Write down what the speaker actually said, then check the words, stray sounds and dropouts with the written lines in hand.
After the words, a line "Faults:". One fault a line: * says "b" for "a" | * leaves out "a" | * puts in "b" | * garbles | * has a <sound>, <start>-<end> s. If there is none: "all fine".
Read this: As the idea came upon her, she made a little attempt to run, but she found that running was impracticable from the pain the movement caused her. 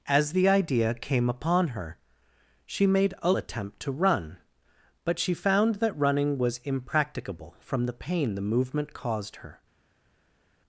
As the idea came upon her, she made a attempt to run, but she found that running was impracticable from the pain the movement caused her.
Faults:
* leaves out "little"